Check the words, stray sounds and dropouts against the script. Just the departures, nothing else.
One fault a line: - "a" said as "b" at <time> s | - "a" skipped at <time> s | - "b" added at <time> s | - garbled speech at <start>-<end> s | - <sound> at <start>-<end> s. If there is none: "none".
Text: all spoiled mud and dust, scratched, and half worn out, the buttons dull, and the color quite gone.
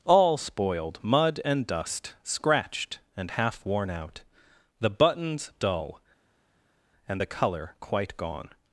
none